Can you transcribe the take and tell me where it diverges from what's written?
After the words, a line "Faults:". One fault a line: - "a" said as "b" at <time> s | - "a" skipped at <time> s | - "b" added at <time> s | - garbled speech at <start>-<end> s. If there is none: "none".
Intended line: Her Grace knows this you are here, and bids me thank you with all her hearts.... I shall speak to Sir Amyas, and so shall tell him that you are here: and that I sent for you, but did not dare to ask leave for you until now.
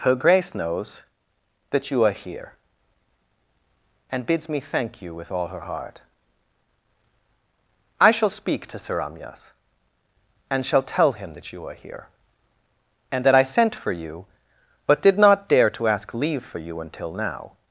Her Grace knows that you are here, and bids me thank you with all her heart.... I shall speak to Sir Amyas, and shall tell him that you are here: and that I sent for you, but did not dare to ask leave for you until now.
Faults:
- "this" said as "that" at 1.7 s
- "hearts" said as "heart" at 5.6 s
- "so" skipped at 10.6 s